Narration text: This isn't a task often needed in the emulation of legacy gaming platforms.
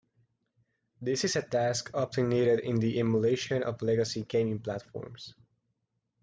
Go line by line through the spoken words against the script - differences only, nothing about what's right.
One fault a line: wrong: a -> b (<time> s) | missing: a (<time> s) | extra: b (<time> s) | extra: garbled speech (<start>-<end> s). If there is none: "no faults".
wrong: isn't -> is (1.2 s)